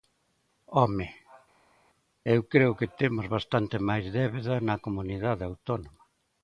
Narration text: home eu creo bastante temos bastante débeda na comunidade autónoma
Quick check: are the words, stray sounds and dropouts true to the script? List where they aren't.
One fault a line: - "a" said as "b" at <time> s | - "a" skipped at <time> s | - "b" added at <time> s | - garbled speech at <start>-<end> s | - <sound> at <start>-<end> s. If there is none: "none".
- "bastante" said as "que" at 2.8 s
- "máis" added at 3.9 s